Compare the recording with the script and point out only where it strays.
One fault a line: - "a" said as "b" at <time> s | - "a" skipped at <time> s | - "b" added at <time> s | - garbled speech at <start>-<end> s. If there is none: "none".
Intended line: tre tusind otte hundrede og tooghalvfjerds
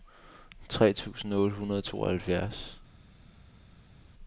none